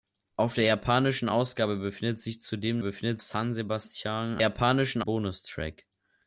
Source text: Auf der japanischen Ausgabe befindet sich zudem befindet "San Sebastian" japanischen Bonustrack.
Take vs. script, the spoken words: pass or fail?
pass